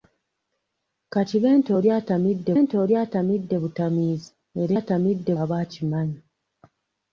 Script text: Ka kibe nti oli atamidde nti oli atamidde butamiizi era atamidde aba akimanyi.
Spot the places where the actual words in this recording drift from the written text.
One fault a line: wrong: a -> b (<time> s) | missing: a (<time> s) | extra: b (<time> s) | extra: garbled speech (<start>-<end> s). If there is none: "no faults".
no faults